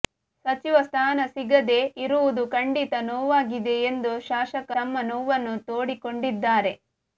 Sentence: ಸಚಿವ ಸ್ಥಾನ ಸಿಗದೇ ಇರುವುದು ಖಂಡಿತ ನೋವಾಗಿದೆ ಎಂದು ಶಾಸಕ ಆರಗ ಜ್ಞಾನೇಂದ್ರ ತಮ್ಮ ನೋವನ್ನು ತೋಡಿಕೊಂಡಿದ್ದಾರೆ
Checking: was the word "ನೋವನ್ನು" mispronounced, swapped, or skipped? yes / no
no